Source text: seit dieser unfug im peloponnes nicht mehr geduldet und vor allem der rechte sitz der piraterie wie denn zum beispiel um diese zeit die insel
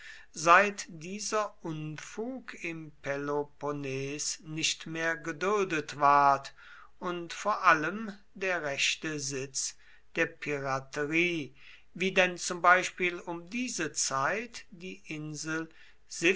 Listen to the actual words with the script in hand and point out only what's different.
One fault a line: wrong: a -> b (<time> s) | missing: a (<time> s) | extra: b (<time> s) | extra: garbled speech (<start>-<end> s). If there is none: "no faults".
extra: ward (6.0 s)